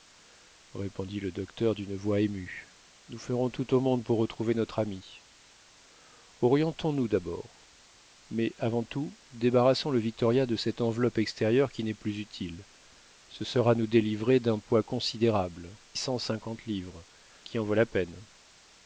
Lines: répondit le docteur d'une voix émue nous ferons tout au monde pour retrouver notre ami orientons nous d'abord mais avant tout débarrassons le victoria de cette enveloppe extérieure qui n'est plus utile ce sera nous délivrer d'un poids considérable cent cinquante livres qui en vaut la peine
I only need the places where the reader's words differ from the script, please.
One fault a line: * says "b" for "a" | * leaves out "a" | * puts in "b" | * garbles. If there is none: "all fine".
all fine